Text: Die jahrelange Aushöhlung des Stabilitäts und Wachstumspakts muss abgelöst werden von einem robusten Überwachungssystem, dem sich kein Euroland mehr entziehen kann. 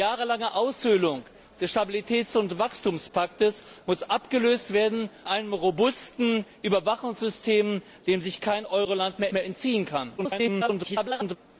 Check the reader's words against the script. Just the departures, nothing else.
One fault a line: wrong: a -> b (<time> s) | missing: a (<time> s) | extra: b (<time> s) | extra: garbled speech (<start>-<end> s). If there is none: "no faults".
missing: von (5.1 s)
extra: mehr (9.3 s)
extra: garbled speech (10.2-11.4 s)